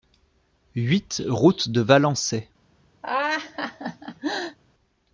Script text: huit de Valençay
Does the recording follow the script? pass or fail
fail